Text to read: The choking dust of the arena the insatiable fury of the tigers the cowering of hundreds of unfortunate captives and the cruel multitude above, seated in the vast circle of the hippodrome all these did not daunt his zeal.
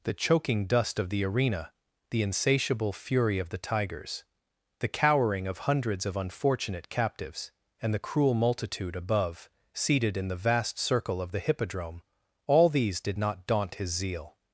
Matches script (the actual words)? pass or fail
pass